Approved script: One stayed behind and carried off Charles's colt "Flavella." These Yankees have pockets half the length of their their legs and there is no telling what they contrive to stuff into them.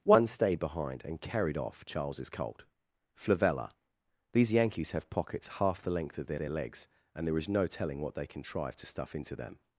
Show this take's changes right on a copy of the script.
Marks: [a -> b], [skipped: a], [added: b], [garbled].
One stayed behind and carried off Charles's colt "Flavella." These Yankees have pockets half the length of their their legs and there is no telling what they contrive to stuff into them.